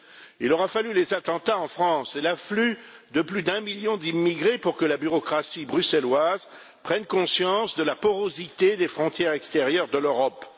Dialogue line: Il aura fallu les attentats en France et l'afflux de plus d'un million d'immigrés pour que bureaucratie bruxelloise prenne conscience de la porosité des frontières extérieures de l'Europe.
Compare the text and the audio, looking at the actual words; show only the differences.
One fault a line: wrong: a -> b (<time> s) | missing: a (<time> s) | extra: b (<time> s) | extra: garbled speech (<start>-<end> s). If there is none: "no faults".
extra: la (4.8 s)